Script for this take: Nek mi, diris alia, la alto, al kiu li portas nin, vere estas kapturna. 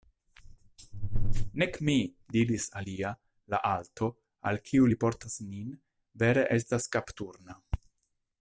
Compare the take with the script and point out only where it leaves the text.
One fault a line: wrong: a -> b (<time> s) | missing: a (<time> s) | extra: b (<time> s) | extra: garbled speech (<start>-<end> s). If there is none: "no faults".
no faults